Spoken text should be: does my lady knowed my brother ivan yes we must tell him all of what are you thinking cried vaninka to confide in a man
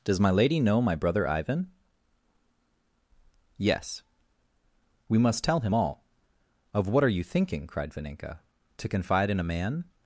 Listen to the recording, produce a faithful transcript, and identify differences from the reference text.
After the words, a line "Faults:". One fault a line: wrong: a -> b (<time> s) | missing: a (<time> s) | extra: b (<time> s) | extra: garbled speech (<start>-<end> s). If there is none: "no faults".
does my lady know my brother ivan yes we must tell him all of what are you thinking cried vaninka to confide in a man
Faults:
wrong: knowed -> know (0.6 s)